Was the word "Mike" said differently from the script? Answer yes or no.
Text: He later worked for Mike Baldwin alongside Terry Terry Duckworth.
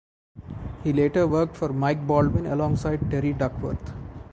no